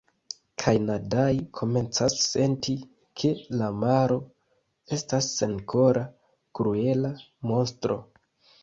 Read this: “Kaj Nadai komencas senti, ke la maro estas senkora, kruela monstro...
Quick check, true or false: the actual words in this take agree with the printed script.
true